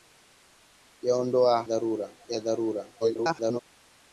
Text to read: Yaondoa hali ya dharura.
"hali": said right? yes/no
no